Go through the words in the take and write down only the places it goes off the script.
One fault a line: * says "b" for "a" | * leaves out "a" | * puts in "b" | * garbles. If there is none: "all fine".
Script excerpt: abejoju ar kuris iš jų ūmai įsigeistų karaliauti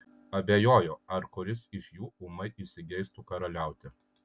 all fine